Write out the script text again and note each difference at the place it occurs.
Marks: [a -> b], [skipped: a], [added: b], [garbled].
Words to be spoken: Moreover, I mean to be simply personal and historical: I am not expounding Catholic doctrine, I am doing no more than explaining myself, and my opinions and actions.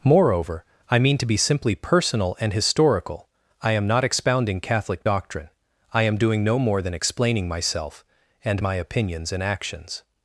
Moreover, I mean to be simply personal and historical: I am not expounding Catholic doctrine, I am doing no more than explaining myself, and my opinions and actions.